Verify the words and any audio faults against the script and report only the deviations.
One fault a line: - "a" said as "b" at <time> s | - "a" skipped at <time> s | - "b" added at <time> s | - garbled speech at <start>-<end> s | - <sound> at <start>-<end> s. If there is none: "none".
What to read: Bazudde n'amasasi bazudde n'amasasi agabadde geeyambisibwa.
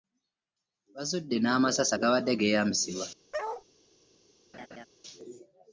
- "bazudde n'amasasi" skipped at 1.9 s
- bark at 3.3-3.6 s
- laugh at 4.5-4.9 s